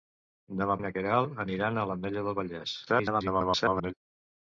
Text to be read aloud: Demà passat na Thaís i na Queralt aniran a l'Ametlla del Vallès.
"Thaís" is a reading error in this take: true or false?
true